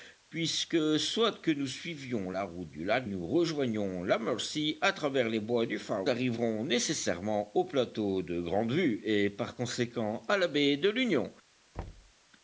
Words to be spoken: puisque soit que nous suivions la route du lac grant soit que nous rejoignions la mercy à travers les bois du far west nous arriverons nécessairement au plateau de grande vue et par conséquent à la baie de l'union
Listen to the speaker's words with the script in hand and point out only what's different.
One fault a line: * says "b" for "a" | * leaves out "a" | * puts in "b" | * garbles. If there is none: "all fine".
* leaves out "grant soit que"
* leaves out "west nous"